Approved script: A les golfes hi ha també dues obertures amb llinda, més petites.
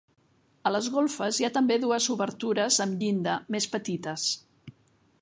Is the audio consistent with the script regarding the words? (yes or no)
yes